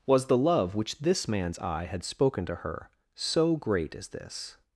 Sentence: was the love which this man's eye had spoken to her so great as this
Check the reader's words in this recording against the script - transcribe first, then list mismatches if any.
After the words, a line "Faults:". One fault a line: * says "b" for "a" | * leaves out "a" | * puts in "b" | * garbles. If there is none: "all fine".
was the love which this man's eye had spoken to her so great as this
Faults:
all fine